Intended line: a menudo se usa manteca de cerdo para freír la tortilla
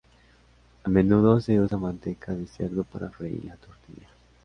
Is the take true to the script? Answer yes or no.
yes